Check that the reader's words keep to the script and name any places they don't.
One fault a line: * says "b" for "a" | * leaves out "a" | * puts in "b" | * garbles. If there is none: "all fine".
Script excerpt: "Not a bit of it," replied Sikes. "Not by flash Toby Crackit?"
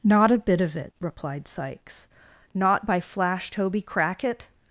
all fine